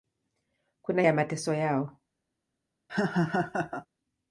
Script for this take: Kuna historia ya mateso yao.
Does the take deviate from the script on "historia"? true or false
true